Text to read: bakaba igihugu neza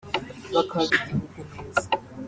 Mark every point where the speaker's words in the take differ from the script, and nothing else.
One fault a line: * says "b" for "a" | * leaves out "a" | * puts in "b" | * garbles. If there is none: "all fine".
all fine